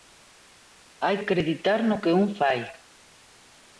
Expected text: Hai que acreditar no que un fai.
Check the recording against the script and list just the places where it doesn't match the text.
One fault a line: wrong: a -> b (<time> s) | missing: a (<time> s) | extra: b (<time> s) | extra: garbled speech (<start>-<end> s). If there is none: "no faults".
missing: que (1.2 s)